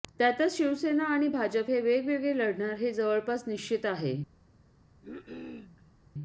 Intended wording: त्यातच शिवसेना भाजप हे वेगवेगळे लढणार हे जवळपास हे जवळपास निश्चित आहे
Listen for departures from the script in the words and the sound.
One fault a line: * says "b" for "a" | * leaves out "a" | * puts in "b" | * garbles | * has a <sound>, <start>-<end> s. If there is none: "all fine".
* puts in "आणि"
* leaves out "हे जवळपास"
* has a cough, 5.0-5.9 s